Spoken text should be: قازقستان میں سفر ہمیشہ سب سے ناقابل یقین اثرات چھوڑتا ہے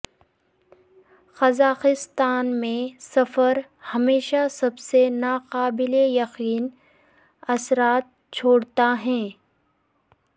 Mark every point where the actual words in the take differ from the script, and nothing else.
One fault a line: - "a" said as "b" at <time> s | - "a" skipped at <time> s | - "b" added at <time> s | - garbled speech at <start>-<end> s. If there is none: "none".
none